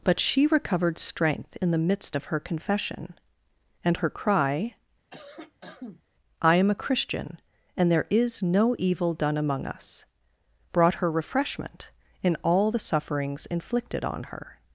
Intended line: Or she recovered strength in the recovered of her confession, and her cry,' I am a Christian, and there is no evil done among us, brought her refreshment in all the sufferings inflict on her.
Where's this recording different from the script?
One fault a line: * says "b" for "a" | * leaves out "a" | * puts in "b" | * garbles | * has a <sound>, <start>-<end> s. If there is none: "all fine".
* says "But" for "Or"
* says "midst" for "recovered"
* has a cough, 5.1-6.0 s
* says "inflicted" for "inflict"